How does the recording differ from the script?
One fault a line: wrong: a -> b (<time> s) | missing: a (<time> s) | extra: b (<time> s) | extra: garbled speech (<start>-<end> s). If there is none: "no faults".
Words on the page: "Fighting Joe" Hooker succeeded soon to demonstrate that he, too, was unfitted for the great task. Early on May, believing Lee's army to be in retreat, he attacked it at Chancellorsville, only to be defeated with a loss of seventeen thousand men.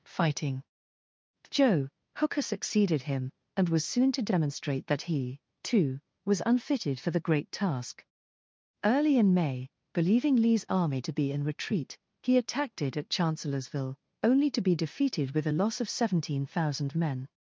extra: him and was (3.0 s)
wrong: on -> in (9.2 s)